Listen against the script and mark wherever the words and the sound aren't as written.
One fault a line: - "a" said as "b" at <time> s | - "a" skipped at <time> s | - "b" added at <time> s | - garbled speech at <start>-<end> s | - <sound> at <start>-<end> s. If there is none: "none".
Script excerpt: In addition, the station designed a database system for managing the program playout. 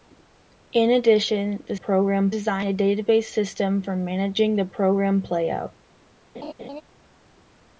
- "station" said as "program" at 1.7 s
- laugh at 6.3-6.8 s